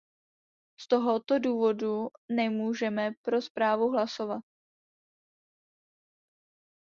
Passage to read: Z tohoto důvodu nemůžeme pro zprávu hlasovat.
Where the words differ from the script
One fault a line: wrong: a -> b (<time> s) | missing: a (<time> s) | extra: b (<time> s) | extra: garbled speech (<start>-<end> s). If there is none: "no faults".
no faults